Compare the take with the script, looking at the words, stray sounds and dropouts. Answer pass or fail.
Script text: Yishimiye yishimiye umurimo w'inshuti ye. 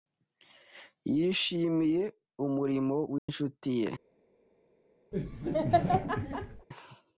fail